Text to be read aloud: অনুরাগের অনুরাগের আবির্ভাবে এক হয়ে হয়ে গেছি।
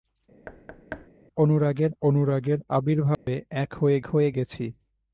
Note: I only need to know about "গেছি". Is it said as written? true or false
true